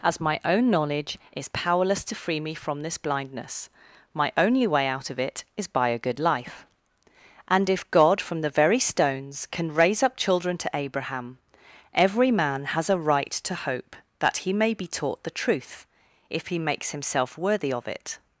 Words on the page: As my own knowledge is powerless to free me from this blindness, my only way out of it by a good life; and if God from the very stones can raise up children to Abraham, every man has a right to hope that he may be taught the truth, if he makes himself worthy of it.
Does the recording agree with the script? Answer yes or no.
no